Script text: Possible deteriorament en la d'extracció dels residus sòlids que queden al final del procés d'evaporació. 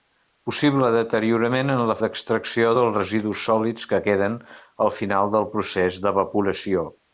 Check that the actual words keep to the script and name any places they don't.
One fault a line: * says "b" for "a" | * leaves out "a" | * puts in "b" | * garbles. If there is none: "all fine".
all fine